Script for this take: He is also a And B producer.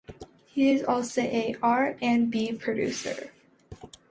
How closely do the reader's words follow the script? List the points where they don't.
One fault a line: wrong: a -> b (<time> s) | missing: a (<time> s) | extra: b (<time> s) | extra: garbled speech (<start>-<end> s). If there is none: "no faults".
extra: R (1.6 s)